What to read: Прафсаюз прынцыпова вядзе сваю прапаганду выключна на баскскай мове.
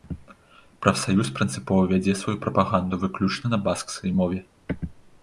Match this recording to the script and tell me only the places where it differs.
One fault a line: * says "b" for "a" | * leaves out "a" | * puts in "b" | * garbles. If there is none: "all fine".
all fine